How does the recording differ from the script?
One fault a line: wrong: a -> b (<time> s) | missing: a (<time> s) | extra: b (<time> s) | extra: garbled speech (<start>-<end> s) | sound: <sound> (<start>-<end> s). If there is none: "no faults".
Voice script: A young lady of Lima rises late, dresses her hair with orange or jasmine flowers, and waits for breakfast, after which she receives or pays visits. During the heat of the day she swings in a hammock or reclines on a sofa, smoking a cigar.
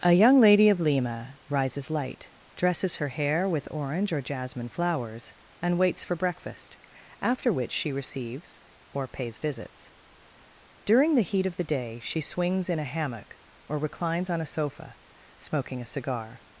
wrong: late -> light (1.9 s)